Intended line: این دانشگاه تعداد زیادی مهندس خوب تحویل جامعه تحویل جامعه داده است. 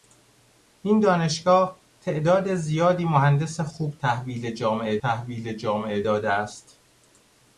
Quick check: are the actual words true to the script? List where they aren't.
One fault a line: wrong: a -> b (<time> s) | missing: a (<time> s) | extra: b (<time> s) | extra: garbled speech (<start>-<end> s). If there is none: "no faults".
no faults